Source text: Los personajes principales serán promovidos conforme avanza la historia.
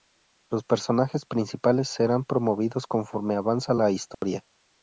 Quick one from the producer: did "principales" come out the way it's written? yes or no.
yes